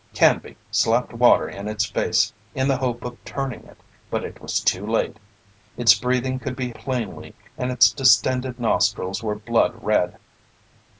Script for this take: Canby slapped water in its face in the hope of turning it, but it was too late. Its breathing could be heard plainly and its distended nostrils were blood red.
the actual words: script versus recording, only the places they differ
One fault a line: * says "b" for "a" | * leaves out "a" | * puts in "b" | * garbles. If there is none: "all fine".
* leaves out "heard"